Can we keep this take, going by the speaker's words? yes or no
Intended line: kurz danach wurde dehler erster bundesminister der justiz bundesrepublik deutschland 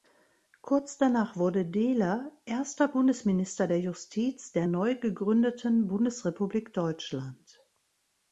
no